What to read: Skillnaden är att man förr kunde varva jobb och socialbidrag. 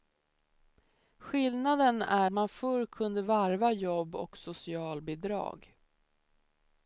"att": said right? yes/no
no